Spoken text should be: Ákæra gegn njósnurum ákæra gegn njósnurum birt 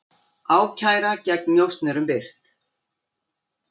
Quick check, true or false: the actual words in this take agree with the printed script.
false